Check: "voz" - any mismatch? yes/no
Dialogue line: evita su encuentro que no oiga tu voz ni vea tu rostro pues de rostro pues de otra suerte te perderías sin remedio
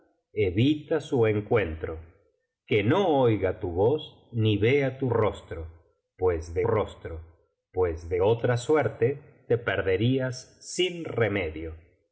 no